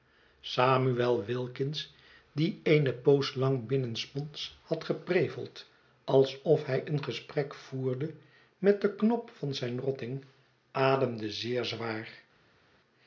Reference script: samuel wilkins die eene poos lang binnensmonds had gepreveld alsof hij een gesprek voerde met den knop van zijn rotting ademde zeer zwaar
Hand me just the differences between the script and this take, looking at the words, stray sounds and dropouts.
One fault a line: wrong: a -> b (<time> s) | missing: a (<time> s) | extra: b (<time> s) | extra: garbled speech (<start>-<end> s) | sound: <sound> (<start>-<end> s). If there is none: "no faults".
no faults